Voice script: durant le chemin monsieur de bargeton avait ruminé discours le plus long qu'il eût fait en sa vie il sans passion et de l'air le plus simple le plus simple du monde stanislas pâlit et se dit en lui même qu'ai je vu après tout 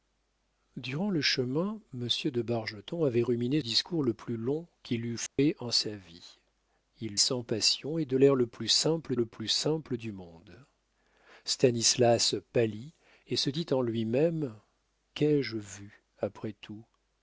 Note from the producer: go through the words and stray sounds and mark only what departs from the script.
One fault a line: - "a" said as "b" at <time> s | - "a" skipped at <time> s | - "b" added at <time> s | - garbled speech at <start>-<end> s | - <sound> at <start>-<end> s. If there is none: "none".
- dropout at 5.3-5.4 s